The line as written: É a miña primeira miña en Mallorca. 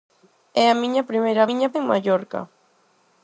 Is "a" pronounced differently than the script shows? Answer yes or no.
no